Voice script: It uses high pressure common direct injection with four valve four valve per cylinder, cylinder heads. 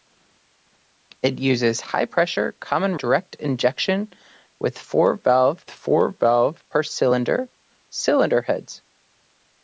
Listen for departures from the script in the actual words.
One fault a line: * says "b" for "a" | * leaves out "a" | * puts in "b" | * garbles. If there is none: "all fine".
all fine